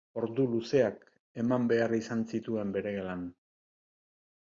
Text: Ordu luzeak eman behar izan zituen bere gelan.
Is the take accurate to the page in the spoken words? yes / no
yes